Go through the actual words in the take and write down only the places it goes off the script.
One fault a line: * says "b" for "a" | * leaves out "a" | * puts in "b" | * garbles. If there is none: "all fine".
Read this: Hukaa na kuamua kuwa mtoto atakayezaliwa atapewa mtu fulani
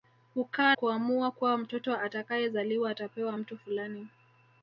* leaves out "na"